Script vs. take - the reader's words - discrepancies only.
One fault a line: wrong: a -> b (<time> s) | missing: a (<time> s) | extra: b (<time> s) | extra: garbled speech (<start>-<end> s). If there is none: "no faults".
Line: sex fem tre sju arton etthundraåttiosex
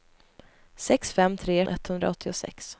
missing: sju arton (1.6 s)